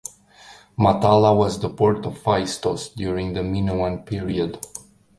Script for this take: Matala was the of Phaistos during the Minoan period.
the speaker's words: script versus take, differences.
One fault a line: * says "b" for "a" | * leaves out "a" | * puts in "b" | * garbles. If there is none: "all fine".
* puts in "port"